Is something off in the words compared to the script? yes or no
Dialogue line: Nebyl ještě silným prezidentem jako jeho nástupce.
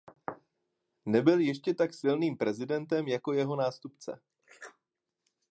yes